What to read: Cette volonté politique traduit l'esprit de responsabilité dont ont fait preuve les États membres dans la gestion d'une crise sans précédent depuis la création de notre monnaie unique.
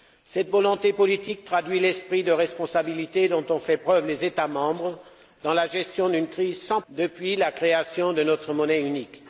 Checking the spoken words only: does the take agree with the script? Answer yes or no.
no